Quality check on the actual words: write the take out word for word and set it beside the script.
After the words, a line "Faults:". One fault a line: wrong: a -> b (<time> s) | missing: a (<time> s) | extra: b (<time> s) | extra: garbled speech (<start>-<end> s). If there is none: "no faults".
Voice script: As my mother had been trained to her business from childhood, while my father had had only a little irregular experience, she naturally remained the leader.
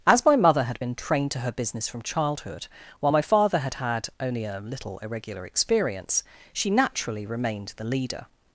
As my mother had been trained to her business from childhood, while my father had had only a little irregular experience, she naturally remained the leader.
Faults:
no faults